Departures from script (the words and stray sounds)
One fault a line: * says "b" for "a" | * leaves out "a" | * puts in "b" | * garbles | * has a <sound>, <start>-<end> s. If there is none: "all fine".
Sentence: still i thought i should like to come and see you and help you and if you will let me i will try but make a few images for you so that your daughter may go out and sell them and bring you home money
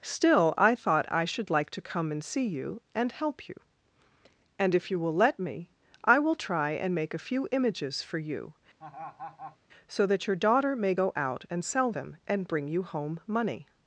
* says "and" for "but"
* has a laugh, 8.8-9.6 s